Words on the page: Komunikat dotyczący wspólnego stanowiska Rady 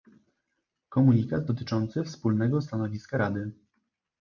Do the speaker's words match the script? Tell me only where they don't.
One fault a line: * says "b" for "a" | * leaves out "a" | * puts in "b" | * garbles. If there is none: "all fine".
all fine